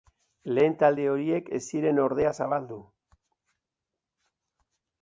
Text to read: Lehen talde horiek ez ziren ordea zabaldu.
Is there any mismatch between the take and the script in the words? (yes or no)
no